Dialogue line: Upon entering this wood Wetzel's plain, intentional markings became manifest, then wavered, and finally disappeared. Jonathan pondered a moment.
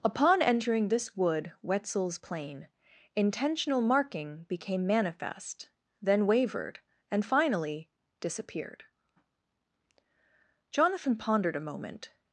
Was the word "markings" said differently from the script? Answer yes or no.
yes